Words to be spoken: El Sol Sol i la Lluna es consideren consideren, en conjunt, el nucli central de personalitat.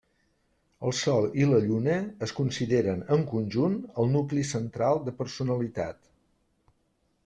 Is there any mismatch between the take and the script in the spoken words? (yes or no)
yes